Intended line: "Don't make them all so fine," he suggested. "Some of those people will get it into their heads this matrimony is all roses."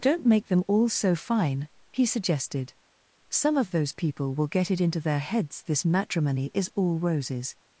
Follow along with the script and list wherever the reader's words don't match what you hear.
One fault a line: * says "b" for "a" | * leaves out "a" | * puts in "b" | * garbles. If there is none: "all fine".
all fine